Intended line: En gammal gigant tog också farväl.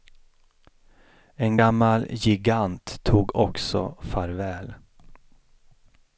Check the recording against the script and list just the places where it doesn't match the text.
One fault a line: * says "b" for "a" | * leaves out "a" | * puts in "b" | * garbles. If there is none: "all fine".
all fine